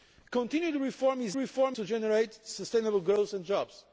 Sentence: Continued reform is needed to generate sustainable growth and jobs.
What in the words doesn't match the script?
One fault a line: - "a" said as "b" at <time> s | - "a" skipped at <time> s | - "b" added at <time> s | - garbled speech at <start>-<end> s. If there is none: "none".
- "needed" said as "reform" at 1.4 s